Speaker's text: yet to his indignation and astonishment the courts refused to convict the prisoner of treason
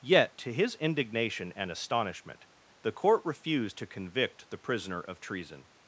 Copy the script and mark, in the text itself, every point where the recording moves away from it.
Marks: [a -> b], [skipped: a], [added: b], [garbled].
yet to his indignation and astonishment the [courts -> court] refused to convict the prisoner of treason